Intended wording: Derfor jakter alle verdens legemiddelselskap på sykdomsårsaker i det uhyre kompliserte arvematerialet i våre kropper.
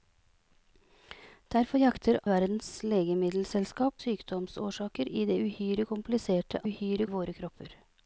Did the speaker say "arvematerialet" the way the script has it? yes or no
no